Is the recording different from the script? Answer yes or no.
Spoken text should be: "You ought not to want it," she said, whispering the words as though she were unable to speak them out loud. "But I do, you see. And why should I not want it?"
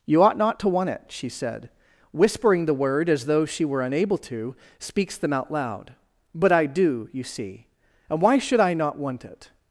yes